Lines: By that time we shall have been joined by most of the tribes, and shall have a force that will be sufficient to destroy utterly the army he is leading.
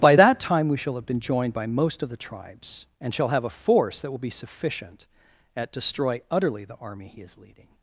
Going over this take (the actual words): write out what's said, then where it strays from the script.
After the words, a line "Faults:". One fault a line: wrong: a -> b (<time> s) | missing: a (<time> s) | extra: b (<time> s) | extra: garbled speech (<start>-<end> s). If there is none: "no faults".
By that time we shall have been joined by most of the tribes, and shall have a force that will be sufficient at destroy utterly the army he is leading.
Faults:
wrong: to -> at (5.6 s)